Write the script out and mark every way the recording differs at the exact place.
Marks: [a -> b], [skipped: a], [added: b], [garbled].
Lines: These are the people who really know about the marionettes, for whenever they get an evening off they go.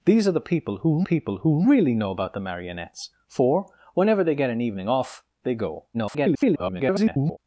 These are the people who [added: people who] really know about the marionettes, for whenever they get an evening off they go. [garbled]